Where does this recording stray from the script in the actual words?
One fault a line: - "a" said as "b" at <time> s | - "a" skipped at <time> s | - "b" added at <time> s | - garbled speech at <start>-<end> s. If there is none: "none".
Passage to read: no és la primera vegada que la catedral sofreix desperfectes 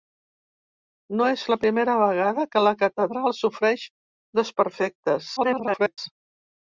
- garbled speech at 5.4-6.0 s